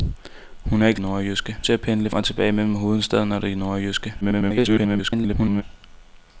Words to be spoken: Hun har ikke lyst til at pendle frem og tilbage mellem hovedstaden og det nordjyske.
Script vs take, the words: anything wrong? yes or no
yes